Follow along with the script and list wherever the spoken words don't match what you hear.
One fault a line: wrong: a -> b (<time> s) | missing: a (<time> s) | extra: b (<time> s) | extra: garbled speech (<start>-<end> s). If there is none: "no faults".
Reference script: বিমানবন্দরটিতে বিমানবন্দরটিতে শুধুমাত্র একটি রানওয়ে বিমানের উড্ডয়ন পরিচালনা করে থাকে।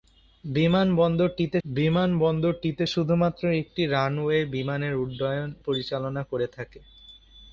no faults